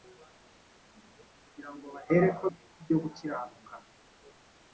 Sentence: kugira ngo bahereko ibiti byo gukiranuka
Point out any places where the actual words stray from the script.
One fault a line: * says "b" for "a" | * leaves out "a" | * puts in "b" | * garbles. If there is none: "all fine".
all fine